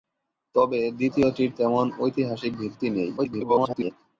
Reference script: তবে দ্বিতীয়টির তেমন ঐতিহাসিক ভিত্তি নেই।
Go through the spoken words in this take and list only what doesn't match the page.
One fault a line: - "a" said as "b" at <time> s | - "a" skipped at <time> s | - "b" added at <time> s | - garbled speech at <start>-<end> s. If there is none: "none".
- garbled speech at 3.2-3.9 s